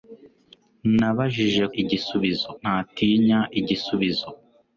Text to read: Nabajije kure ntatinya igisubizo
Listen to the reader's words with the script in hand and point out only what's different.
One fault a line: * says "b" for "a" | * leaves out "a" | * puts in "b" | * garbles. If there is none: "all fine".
* says "igisubizo" for "kure"